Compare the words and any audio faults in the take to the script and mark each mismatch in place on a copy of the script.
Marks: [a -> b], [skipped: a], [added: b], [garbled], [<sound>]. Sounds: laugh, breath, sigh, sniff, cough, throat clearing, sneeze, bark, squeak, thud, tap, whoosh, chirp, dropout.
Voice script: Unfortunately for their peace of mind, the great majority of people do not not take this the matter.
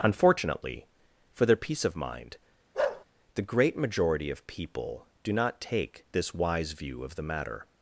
Unfortunately for their peace of mind, [bark] the great majority of people do not [skipped: not] take this [added: wise view of] the matter.